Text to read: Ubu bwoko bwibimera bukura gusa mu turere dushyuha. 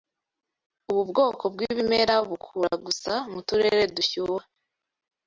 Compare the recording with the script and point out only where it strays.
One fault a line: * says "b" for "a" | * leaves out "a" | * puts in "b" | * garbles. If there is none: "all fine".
all fine